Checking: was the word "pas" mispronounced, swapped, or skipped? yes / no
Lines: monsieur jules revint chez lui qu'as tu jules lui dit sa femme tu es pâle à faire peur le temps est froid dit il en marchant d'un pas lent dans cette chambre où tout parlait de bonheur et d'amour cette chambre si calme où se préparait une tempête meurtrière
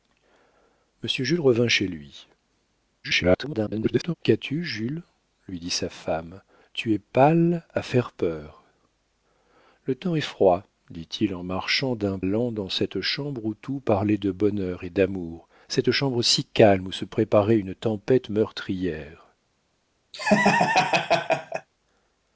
yes